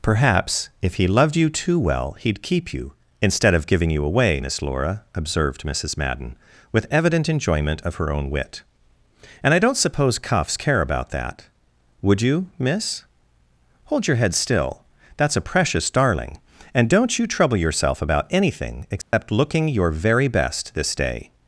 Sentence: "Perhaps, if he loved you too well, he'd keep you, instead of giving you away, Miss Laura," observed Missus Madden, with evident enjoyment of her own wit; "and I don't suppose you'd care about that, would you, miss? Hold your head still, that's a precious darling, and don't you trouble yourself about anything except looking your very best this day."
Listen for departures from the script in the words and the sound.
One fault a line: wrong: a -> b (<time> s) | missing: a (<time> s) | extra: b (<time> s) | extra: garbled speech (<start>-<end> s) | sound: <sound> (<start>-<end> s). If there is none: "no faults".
wrong: you'd -> cuffs (10.2 s)
sound: dropout (19.0-19.1 s)